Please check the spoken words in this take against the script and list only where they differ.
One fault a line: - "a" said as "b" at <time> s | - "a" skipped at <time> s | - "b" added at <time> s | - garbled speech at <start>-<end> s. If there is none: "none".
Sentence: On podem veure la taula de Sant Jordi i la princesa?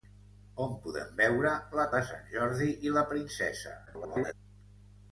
- "taula" skipped at 1.9 s
- garbled speech at 3.9-4.3 s